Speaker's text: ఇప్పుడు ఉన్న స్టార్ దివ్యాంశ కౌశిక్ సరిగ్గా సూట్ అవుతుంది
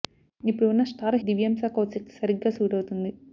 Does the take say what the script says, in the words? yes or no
yes